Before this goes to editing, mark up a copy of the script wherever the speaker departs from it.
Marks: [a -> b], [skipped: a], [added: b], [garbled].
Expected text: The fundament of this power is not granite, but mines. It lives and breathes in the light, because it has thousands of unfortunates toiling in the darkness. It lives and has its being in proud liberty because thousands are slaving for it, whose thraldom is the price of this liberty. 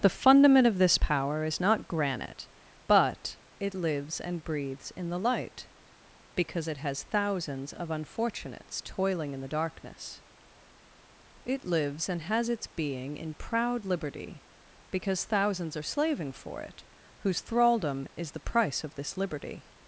The fundament of this power is not granite, but [skipped: mines.] It lives and breathes in the light, because it has thousands of unfortunates toiling in the darkness. It lives and has its being in proud liberty because thousands are slaving for it, whose thraldom is the price of this liberty.